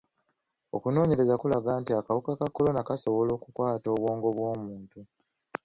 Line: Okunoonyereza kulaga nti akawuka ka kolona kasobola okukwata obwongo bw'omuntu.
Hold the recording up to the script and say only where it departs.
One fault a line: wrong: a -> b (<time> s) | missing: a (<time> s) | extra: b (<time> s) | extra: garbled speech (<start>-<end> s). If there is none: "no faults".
no faults